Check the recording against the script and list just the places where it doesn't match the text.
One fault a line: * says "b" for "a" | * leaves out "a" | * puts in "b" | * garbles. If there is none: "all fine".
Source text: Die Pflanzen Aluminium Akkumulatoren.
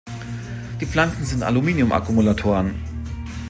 * puts in "sind"